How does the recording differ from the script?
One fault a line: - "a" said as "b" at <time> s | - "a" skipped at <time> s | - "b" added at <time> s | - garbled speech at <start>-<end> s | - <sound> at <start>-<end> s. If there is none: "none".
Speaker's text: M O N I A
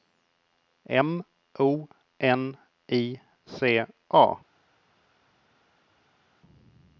- "C" added at 3.5 s